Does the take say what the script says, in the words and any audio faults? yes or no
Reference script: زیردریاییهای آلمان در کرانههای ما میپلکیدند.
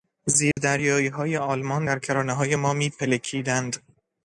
no